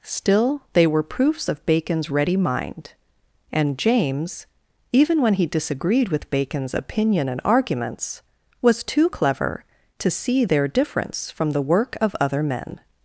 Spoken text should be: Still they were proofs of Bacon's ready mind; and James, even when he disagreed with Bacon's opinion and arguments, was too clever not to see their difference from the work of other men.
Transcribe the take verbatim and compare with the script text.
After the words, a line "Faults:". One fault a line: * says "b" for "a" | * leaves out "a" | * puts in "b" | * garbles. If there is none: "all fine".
Still they were proofs of Bacon's ready mind; and James, even when he disagreed with Bacon's opinion and arguments, was too clever to see their difference from the work of other men.
Faults:
* leaves out "not"